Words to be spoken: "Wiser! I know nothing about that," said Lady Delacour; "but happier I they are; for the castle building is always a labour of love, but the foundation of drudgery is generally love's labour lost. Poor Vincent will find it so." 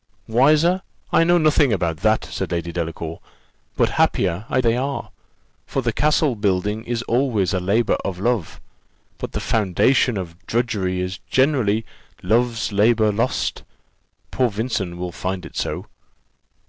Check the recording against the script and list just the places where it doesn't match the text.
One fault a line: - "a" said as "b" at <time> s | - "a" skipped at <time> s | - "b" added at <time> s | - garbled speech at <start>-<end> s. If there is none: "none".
none